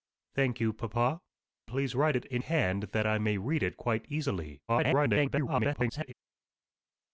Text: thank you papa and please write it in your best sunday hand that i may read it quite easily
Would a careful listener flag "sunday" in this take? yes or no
yes